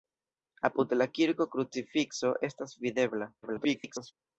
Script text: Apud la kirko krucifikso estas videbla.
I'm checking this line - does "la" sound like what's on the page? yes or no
yes